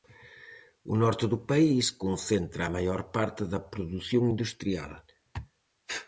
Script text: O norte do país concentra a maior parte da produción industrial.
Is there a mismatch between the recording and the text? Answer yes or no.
no